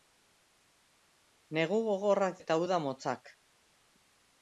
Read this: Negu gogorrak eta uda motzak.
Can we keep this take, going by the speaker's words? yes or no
yes